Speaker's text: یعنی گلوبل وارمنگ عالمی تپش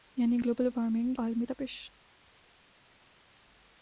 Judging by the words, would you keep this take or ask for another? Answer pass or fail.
pass